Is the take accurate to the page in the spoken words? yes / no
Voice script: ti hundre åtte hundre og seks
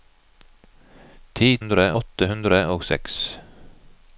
yes